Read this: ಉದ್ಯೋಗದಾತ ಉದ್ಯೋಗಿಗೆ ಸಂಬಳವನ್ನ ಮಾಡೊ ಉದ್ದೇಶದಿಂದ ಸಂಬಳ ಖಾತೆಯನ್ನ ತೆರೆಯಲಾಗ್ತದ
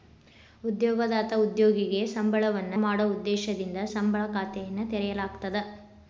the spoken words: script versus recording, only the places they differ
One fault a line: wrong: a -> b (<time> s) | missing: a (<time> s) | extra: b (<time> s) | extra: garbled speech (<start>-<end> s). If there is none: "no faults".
no faults